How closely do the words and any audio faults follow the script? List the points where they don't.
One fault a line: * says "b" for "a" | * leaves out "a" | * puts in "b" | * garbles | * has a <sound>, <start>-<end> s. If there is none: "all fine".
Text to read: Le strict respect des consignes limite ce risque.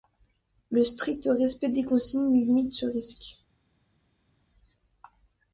all fine